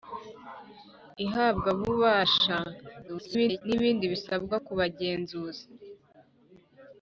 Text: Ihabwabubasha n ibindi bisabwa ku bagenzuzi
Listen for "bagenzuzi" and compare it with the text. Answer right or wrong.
right